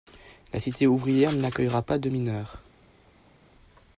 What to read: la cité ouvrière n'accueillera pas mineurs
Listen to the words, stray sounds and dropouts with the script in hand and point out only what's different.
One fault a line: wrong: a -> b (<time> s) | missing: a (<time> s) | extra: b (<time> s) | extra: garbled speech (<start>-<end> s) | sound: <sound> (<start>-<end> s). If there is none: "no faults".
extra: de (2.0 s)